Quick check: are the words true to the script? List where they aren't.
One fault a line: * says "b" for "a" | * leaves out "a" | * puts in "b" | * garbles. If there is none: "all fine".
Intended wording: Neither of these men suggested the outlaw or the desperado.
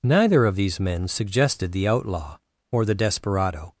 all fine